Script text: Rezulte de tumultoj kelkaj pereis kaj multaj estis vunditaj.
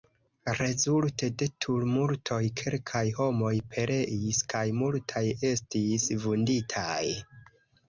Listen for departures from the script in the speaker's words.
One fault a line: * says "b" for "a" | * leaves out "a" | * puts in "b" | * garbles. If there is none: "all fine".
* puts in "homoj"